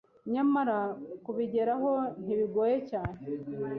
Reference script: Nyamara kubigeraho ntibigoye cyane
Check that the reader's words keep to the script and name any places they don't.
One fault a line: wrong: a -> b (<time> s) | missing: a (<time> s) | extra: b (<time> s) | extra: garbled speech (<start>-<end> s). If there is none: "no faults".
no faults